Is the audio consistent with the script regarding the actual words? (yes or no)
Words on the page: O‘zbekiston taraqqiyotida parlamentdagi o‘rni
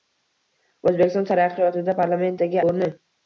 yes